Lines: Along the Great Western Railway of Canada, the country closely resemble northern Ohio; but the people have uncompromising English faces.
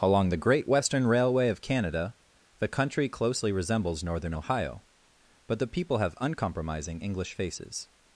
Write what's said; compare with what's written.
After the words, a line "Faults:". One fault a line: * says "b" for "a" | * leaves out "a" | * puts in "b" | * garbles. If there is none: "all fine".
Along the Great Western Railway of Canada, the country closely resembles northern Ohio; but the people have uncompromising English faces.
Faults:
* says "resembles" for "resemble"